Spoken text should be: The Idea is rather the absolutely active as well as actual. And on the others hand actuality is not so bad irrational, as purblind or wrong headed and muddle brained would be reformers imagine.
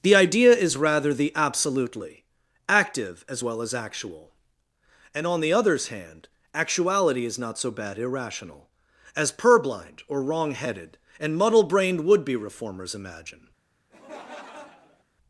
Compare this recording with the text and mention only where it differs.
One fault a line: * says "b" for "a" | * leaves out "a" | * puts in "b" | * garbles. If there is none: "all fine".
all fine